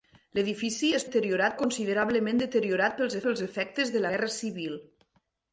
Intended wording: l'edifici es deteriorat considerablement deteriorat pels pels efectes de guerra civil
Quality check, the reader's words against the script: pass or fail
pass